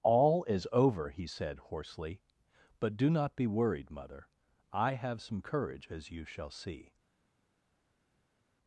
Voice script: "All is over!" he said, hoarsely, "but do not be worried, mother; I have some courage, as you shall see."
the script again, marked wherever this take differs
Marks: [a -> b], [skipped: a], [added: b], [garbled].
"All is over!" he said, hoarsely, "but do not be worried, mother; I have some courage, as you shall see."